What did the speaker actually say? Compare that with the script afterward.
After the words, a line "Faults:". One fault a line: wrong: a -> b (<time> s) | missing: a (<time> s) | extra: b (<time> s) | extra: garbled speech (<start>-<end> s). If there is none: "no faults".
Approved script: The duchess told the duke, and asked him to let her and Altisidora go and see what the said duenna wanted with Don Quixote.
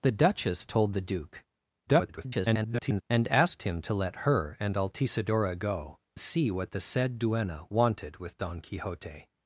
The duchess told the duke, [garbled] and asked him to let her and Altisidora go see what the said duenna wanted with Don Quixote.
Faults:
extra: garbled speech (1.9-3.0 s)
missing: and (6.0 s)